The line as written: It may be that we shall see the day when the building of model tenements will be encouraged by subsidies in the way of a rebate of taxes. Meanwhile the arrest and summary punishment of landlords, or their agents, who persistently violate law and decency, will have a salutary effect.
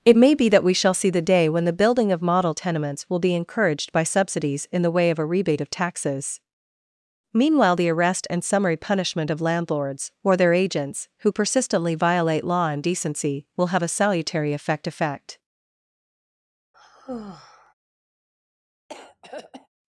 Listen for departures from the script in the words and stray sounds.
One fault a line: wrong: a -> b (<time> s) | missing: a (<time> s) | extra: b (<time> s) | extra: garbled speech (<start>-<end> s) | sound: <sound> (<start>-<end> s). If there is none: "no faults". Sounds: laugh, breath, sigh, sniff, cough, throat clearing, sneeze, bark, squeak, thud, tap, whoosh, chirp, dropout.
extra: effect (14.9 s)
sound: sigh (16.7-17.7 s)
sound: throat clearing (18.9-19.7 s)